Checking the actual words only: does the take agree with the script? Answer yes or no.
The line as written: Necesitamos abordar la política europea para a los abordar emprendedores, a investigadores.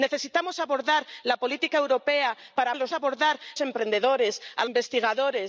yes